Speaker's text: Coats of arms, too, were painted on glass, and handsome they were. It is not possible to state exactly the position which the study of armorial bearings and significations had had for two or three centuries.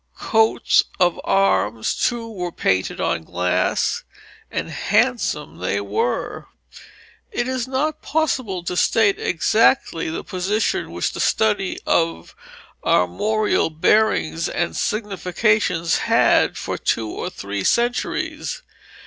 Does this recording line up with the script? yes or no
no